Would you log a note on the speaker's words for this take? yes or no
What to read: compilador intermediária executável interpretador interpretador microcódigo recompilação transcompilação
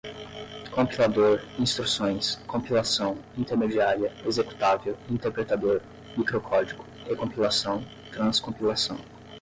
yes